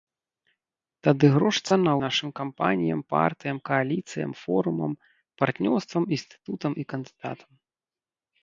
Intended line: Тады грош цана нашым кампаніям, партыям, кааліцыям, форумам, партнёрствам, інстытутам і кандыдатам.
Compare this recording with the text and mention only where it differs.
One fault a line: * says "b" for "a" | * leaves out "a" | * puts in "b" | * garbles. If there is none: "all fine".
all fine